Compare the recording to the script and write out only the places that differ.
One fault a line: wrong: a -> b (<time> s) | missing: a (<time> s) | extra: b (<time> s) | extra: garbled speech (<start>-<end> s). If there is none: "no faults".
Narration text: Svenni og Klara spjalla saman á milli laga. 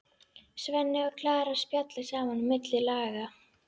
no faults